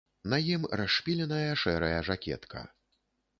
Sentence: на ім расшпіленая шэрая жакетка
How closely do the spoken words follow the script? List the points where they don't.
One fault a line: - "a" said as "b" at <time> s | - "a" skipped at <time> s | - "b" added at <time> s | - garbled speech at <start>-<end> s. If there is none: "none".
none